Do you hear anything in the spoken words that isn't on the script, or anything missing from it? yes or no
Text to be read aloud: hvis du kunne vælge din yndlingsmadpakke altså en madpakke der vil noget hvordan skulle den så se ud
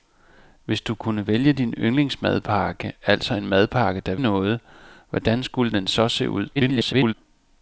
yes